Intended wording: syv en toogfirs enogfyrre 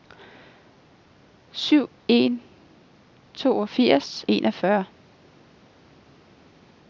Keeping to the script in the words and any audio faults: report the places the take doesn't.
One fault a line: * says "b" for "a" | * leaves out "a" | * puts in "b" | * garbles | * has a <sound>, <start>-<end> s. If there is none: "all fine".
all fine